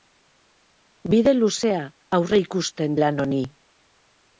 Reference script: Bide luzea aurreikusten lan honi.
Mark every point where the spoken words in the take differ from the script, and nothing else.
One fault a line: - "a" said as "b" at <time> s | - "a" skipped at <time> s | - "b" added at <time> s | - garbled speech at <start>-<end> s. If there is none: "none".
none